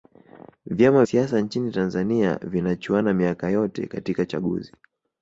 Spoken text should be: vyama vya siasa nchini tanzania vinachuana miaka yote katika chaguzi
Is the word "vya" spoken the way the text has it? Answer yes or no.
no